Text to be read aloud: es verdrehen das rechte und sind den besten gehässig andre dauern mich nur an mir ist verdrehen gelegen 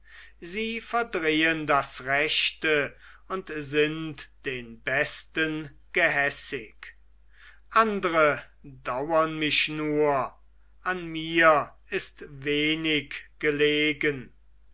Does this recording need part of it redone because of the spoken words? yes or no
yes